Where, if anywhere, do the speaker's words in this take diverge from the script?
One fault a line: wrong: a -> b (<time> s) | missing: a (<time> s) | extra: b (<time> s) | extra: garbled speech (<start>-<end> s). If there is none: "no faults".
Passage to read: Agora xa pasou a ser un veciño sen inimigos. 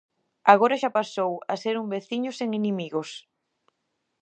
no faults